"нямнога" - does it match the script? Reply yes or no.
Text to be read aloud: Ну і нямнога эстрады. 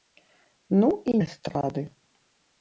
no